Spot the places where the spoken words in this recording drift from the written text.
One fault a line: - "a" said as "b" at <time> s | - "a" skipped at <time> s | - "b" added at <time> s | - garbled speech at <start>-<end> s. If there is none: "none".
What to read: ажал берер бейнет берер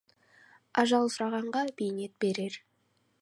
- "берер" said as "сұрағанға" at 1.1 s